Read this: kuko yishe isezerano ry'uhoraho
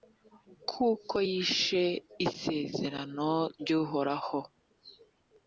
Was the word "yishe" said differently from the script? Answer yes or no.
no